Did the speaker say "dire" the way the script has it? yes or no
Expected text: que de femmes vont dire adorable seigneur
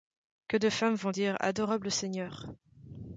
yes